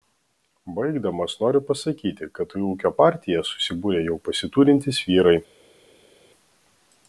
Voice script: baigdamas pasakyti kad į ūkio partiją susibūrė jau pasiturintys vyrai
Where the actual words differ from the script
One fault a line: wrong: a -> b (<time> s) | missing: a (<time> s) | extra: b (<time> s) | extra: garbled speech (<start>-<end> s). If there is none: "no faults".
extra: noriu (1.4 s)